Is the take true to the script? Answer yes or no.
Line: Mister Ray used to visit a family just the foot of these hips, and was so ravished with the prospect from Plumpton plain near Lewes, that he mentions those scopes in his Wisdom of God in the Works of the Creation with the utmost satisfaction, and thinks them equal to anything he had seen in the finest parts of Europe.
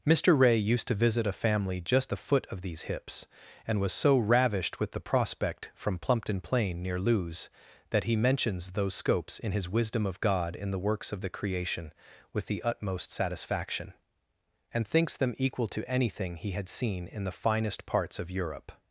yes